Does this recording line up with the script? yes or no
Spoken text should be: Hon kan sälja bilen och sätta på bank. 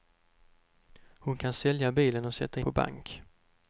yes